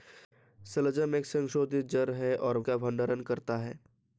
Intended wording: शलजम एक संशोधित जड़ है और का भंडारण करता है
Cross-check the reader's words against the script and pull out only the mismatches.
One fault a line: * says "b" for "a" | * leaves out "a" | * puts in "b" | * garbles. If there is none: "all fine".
all fine